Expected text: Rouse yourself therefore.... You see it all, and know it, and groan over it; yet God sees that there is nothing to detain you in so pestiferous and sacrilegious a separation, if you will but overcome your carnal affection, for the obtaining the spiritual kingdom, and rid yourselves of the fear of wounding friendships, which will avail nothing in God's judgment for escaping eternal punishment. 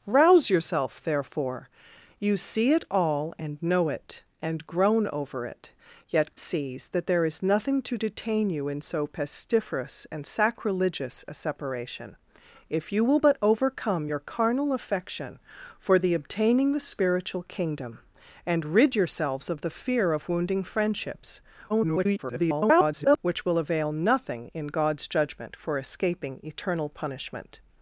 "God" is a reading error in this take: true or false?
true